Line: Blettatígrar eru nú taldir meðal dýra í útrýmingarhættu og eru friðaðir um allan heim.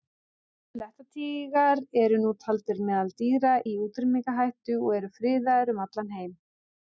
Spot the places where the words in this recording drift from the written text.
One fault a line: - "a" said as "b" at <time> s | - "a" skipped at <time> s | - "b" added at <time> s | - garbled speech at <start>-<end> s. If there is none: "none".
none